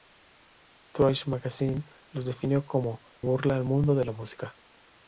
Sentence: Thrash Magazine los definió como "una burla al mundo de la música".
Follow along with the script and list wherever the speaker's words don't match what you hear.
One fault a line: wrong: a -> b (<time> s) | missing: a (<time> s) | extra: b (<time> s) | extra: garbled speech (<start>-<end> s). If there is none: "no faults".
missing: una (3.0 s)